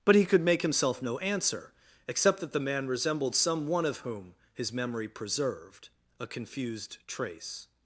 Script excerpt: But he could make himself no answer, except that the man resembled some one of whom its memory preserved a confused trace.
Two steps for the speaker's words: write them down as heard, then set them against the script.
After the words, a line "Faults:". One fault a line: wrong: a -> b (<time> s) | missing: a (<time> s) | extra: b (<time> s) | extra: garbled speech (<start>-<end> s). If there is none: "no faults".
But he could make himself no answer, except that the man resembled some one of whom his memory preserved a confused trace.
Faults:
wrong: its -> his (4.5 s)